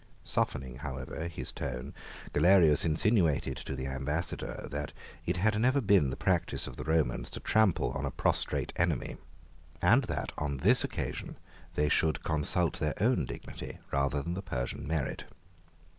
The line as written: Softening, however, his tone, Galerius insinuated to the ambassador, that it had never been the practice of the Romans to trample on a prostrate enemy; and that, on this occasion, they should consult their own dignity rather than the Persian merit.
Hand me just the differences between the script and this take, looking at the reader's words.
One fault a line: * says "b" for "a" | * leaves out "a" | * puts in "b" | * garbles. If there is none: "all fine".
all fine